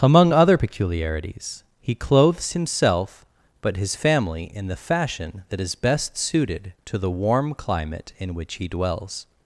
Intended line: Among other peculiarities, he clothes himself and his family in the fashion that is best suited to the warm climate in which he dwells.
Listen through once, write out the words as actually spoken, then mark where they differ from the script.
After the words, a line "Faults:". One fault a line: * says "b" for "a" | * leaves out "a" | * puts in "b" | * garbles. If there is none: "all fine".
Among other peculiarities, he clothes himself but his family in the fashion that is best suited to the warm climate in which he dwells.
Faults:
* says "but" for "and"